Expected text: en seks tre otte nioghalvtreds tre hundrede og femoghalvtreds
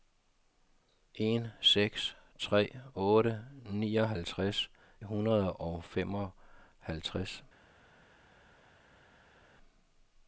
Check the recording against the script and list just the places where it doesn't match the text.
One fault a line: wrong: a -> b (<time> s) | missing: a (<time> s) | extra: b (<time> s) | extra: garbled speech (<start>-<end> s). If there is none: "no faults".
missing: tre (4.7 s)